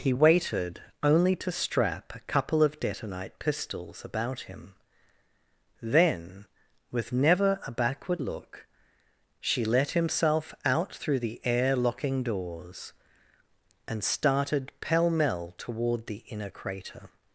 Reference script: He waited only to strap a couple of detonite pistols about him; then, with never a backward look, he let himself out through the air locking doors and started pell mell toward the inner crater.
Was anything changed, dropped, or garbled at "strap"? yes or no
no